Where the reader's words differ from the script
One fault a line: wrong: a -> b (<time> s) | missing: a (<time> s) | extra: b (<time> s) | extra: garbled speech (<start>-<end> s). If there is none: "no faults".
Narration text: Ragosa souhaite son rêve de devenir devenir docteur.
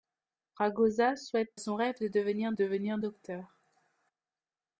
no faults